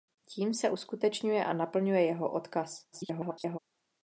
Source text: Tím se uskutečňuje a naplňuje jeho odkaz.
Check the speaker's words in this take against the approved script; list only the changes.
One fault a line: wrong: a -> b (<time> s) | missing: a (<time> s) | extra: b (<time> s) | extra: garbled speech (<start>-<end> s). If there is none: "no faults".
extra: garbled speech (2.9-3.6 s)